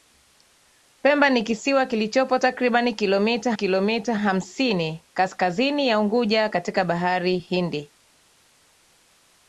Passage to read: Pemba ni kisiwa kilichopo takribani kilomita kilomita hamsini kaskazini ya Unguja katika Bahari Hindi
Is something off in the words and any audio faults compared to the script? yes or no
no